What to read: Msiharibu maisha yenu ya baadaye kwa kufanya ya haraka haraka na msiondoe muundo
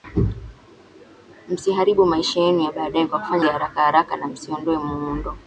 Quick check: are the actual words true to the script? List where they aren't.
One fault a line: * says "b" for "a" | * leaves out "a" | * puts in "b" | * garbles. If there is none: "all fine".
all fine